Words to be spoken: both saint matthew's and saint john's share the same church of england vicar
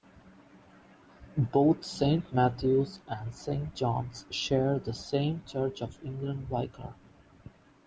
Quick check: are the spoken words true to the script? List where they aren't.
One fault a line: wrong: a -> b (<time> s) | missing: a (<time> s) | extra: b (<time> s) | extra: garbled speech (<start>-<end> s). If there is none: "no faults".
no faults